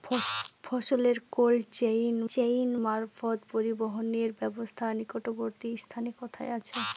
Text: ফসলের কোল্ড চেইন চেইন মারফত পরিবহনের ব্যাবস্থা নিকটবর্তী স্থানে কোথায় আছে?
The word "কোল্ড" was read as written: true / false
true